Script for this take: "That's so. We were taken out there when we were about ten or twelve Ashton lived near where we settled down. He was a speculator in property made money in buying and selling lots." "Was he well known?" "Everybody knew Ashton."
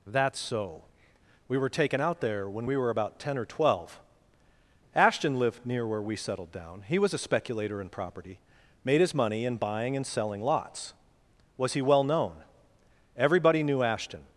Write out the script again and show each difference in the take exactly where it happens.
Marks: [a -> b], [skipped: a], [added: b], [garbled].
"That's so. We were taken out there when we were about ten or twelve Ashton lived near where we settled down. He was a speculator in property made [added: his] money in buying and selling lots." "Was he well known?" "Everybody knew Ashton."